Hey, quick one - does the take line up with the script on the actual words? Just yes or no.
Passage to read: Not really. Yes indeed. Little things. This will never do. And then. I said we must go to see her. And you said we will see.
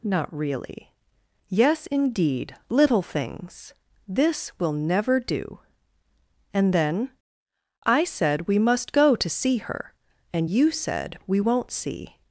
no